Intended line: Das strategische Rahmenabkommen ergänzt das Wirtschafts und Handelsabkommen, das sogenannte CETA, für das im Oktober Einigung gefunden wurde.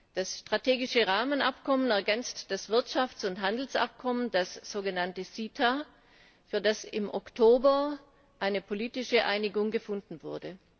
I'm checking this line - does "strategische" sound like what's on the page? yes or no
yes